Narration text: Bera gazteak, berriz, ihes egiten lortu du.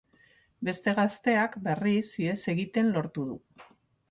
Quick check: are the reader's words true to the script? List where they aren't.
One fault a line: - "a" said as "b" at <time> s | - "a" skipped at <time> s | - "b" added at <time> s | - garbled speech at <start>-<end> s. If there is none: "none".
- "Bera" said as "Beste" at 0.7 s